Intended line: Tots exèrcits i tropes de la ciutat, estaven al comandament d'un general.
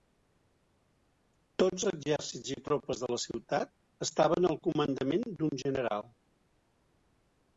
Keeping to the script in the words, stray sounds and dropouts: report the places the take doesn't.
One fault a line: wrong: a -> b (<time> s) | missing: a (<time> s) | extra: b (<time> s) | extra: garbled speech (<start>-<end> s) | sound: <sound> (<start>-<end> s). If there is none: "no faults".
no faults